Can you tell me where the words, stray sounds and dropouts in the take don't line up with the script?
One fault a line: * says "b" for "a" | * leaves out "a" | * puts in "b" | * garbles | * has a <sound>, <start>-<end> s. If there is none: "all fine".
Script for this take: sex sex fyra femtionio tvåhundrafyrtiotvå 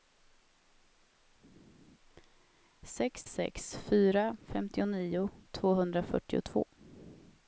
all fine